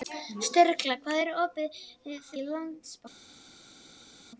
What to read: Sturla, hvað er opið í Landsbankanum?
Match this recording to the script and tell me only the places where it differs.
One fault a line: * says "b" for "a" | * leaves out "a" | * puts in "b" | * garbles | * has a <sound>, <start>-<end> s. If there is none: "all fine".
all fine